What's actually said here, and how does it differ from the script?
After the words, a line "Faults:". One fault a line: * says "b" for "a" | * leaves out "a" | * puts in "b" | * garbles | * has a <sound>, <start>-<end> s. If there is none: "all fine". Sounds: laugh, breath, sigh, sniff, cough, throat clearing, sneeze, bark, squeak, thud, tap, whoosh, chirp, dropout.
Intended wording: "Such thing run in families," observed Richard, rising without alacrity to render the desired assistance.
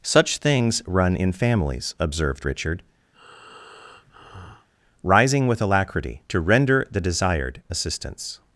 "Such things run in families," observed Richard, rising with alacrity to render the desired assistance.
Faults:
* says "things" for "thing"
* has a breath, 3.1-4.7 s
* says "with" for "without"